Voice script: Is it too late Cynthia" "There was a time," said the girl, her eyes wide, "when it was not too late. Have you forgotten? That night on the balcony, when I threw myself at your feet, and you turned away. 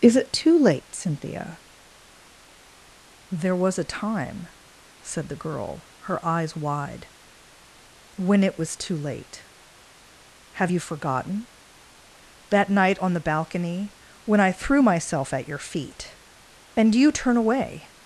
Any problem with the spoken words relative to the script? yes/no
yes